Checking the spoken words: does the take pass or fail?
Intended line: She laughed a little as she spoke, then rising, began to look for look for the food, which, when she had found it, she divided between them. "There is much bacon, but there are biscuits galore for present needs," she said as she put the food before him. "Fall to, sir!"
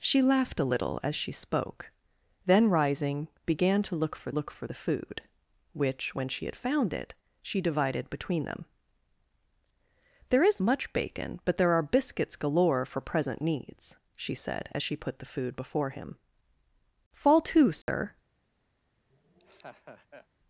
pass